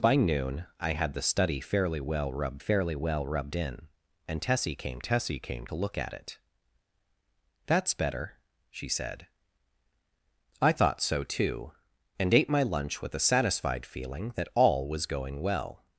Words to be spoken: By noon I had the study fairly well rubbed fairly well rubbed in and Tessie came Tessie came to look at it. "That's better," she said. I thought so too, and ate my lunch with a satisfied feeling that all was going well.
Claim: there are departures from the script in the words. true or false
false